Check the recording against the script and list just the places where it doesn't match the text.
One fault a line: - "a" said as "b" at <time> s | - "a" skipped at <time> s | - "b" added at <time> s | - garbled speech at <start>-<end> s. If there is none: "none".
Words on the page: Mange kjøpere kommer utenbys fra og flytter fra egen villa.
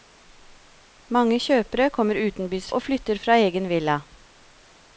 - "fra" skipped at 2.7 s